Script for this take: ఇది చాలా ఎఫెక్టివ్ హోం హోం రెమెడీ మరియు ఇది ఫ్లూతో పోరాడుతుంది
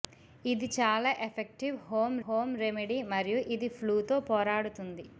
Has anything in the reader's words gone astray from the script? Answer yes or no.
no